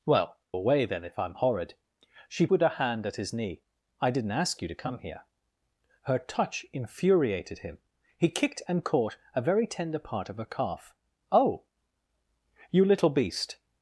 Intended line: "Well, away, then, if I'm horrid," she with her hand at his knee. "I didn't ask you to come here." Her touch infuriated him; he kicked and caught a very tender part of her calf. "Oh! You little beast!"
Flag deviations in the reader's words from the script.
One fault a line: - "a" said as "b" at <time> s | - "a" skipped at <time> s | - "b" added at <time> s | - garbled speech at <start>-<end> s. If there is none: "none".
none